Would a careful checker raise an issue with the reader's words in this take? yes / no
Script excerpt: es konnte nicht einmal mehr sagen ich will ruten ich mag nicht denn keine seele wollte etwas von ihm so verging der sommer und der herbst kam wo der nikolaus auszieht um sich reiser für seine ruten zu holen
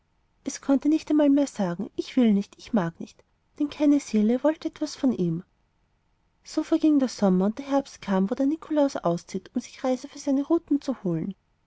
yes